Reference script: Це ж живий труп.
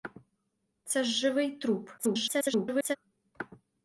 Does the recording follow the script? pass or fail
fail